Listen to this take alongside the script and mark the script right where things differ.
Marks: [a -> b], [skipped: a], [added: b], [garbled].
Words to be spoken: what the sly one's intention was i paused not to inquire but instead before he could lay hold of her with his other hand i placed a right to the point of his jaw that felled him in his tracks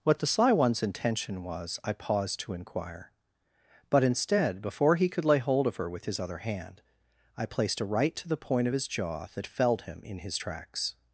what the sly one's intention was i paused [skipped: not] to inquire but instead before he could lay hold of her with his other hand i placed a right to the point of his jaw that felled him in his tracks